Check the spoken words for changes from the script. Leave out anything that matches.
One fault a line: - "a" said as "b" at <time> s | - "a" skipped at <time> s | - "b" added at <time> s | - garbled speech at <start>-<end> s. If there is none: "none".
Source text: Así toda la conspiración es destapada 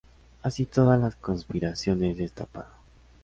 none